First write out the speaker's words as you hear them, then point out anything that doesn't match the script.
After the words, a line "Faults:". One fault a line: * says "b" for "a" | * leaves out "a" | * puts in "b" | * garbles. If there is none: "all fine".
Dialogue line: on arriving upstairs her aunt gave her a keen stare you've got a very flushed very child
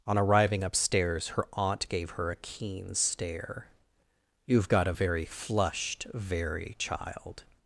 on arriving upstairs her aunt gave her a keen stare you've got a very flushed very child
Faults:
all fine